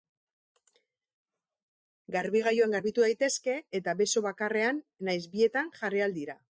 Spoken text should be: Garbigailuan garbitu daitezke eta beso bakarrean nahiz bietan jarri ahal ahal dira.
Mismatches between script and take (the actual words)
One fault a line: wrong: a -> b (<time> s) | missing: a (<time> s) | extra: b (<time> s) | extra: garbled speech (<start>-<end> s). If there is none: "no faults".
missing: ahal (6.2 s)